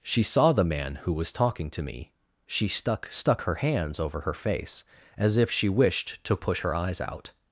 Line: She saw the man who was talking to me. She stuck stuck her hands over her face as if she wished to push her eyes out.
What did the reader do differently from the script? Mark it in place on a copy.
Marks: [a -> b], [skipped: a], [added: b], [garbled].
She saw the man who was talking to me. She stuck stuck her hands over her face as if she wished to push her eyes out.